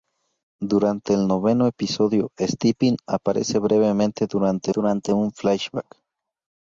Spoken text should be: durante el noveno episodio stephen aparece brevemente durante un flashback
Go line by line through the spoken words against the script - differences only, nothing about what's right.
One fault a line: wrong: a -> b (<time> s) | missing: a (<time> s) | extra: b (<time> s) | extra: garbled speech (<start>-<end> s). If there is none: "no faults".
extra: durante (4.7 s)